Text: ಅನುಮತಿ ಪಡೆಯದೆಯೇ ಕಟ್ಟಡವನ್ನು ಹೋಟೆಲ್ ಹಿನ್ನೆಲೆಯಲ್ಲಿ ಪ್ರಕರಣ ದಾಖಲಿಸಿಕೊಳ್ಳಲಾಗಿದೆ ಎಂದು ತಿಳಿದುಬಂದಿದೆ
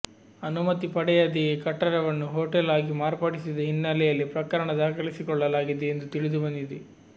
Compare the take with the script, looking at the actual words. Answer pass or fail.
fail